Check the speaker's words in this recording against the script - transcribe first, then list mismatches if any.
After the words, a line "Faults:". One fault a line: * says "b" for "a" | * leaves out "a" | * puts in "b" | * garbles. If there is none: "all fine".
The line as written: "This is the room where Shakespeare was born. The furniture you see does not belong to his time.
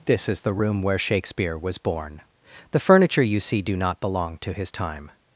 "This is the room where Shakespeare was born. The furniture you see do not belong to his time.
Faults:
* says "do" for "does"